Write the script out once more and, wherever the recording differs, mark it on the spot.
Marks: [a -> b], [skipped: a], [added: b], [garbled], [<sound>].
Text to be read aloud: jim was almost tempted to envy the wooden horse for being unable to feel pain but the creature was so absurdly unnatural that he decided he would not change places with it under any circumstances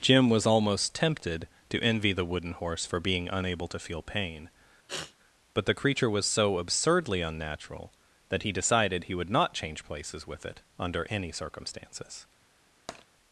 jim was almost tempted to envy the wooden horse for being unable to feel pain [sniff] but the creature was so absurdly unnatural that he decided he would not change places with it under any circumstances [tap]